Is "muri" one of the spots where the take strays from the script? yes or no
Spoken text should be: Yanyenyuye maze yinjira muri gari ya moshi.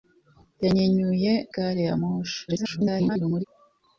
yes